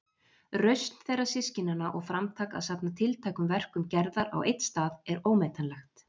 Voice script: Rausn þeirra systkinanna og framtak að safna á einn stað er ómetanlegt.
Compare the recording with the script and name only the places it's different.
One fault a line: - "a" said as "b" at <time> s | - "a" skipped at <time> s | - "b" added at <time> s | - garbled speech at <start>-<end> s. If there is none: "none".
- "tiltækum verkum Gerðar" added at 3.0 s